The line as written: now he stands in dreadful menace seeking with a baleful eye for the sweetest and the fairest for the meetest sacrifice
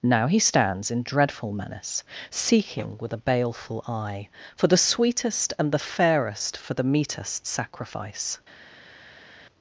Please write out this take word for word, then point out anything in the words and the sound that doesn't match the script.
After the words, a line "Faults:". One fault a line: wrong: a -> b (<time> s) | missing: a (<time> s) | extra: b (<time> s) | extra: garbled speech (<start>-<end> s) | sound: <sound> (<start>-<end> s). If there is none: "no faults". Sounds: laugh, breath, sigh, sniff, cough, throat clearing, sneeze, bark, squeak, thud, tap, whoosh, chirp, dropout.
now he stands in dreadful menace seeking with a baleful eye for the sweetest and the fairest for the meetest sacrifice
Faults:
no faults